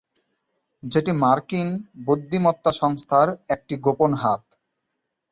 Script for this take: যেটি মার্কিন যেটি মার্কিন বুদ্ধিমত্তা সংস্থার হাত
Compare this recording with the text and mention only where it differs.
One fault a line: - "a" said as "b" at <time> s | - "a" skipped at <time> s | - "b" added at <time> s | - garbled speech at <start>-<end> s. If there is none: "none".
- "যেটি মার্কিন বুদ্ধিমত্তা সংস্থার" said as "বুদ্ধিমত্তা সংস্থার একটি গোপন" at 2.0 s